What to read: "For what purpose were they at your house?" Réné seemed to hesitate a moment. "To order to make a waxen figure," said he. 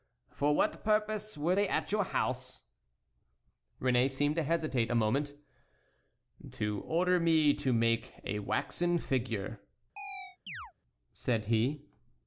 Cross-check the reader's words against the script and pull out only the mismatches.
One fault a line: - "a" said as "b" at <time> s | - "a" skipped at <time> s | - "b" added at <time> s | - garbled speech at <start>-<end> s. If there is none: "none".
- "me" added at 7.2 s